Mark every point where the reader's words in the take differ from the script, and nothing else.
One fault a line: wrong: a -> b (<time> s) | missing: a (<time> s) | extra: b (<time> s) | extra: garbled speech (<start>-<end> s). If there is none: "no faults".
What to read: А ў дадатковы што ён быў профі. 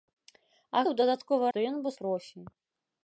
no faults